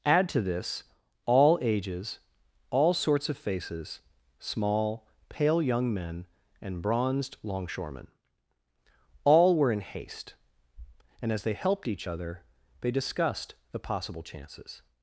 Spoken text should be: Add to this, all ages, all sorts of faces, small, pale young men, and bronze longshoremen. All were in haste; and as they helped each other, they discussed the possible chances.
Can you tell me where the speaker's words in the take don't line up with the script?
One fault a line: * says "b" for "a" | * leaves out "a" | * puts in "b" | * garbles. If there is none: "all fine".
* says "bronzed" for "bronze"